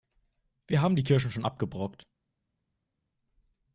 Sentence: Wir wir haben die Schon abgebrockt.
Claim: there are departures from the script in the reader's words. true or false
true